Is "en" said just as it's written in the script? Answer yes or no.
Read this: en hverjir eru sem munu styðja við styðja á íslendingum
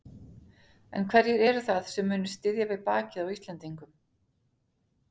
yes